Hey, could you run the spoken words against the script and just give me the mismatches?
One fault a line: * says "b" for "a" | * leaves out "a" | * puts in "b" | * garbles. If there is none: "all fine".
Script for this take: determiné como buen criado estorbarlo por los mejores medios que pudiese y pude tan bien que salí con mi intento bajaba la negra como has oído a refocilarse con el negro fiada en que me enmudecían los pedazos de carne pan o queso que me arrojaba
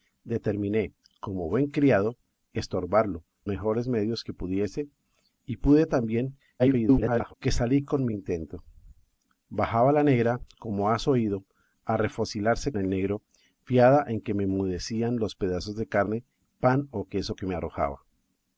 * leaves out "por los"
* garbles
* leaves out "con"